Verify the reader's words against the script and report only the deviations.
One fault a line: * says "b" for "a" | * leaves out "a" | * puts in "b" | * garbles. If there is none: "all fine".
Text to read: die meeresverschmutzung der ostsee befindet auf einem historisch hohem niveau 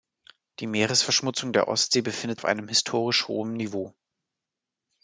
all fine